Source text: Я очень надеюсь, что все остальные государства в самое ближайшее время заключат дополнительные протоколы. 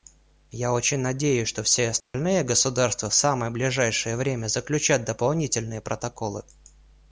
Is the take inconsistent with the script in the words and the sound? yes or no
yes